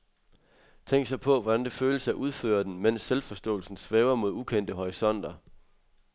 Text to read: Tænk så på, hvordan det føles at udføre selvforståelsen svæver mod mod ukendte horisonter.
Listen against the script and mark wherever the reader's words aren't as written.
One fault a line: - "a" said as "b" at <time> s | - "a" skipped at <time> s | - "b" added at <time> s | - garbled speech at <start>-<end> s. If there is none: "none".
- "den mens" added at 2.6 s
- "mod" skipped at 4.3 s